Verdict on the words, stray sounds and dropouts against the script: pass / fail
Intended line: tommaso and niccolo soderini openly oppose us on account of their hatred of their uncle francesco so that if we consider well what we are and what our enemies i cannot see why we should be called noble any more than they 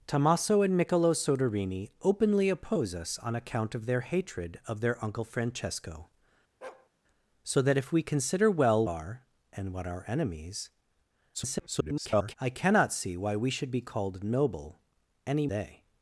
fail